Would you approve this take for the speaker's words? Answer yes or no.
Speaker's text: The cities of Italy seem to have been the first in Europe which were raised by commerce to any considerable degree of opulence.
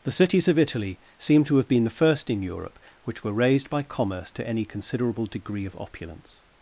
yes